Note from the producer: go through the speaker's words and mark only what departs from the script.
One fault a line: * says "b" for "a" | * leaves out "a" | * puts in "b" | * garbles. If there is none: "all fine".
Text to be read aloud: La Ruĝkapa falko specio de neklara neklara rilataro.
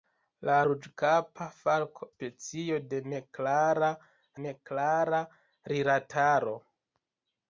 all fine